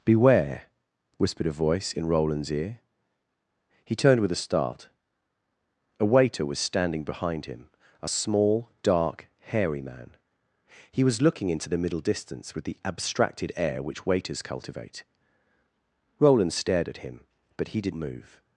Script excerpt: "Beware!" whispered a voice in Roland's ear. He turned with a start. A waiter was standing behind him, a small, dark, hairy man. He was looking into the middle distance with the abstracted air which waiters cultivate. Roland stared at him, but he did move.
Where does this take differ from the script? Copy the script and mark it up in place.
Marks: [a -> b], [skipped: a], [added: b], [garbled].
"Beware!" whispered a voice in Roland's ear. He turned with a start. A waiter was standing behind him, a small, dark, hairy man. He was looking into the middle distance with the abstracted air which waiters cultivate. Roland stared at him, but he did move.